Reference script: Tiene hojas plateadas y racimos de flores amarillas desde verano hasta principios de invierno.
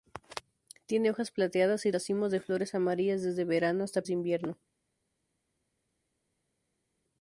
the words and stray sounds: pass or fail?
fail